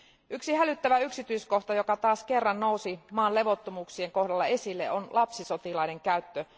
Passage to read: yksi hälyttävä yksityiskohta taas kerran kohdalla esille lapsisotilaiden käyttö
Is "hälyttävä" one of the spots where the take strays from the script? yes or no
no